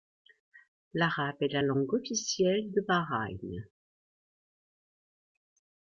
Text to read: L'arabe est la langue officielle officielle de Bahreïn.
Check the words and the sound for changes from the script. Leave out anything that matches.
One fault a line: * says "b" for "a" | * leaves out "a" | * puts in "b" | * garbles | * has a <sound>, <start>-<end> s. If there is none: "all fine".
* leaves out "officielle"